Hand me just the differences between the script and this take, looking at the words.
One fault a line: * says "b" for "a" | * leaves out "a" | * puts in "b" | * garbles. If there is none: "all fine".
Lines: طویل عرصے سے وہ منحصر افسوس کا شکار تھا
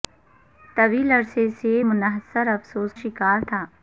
* leaves out "وہ"
* leaves out "کا"